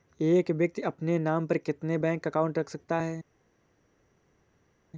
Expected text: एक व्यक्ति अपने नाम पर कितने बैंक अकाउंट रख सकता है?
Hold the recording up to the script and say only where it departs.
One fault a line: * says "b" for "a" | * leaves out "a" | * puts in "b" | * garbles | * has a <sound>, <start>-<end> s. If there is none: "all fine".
all fine